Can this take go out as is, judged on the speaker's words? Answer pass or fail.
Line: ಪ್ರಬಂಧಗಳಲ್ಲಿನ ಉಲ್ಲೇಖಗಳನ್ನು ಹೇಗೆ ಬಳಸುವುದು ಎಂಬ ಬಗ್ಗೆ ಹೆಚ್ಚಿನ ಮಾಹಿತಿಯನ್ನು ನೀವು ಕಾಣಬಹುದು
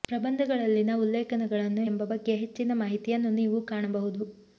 fail